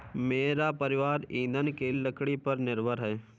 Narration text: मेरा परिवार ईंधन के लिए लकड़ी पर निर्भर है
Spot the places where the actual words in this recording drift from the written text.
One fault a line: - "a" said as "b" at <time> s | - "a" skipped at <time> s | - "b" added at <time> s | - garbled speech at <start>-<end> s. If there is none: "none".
- "लिए" skipped at 1.9 s